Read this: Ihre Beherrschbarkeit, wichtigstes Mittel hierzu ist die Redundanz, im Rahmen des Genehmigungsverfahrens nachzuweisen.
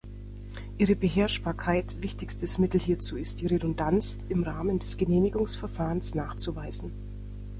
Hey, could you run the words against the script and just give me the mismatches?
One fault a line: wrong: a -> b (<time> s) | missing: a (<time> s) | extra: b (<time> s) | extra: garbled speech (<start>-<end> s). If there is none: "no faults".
no faults